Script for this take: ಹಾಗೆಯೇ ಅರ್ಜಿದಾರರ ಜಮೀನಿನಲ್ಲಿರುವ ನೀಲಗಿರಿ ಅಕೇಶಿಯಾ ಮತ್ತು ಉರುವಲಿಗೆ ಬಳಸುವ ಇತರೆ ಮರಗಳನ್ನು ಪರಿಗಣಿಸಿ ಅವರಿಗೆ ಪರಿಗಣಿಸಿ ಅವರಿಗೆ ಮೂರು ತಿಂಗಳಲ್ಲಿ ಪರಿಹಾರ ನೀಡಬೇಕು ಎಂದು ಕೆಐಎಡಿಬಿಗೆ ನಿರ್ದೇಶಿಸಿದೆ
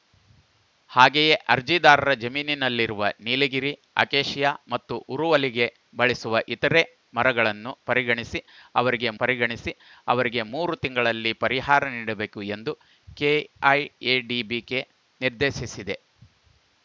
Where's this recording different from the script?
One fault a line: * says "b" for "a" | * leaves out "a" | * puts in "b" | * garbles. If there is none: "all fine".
all fine